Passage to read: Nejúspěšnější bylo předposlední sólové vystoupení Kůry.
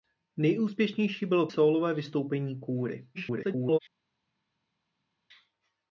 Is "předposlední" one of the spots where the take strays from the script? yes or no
yes